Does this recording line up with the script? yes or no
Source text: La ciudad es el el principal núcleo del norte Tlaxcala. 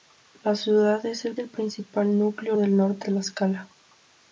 yes